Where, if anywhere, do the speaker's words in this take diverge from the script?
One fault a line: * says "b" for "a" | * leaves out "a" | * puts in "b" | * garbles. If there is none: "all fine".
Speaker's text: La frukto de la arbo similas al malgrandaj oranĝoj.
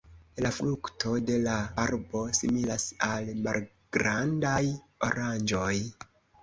all fine